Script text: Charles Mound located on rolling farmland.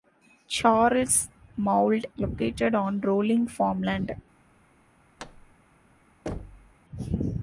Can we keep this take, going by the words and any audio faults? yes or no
no